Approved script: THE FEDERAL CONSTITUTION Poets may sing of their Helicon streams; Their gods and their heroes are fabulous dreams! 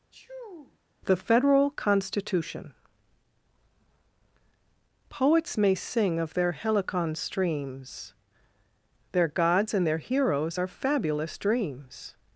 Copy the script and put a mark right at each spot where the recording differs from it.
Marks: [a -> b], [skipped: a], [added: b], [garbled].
THE FEDERAL CONSTITUTION Poets may sing of their Helicon streams; Their gods and their heroes are fabulous dreams!